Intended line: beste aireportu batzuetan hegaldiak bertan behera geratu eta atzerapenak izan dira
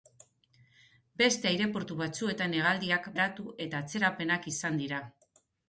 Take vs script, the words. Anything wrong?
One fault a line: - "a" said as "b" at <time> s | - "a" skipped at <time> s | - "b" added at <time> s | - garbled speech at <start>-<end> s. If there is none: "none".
- "bertan behera" skipped at 3.1 s